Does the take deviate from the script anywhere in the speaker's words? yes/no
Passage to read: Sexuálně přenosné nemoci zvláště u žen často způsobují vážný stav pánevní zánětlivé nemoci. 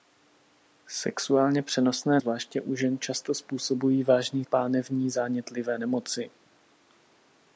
yes